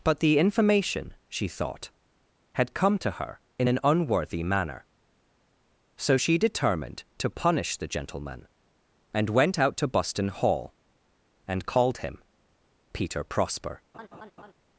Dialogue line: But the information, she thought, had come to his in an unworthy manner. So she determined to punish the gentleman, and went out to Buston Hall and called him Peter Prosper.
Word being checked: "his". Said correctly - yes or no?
no